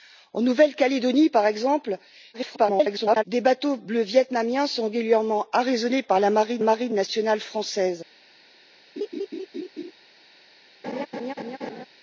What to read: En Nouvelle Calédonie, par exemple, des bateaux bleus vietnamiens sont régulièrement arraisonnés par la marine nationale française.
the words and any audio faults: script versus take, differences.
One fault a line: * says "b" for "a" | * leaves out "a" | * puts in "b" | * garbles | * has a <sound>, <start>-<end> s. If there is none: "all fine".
* garbles
* puts in "marine"
* has a laugh, 9.0-9.9 s
* has a laugh, 10.8-11.9 s